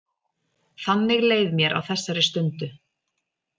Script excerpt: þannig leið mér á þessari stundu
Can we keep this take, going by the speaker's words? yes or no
yes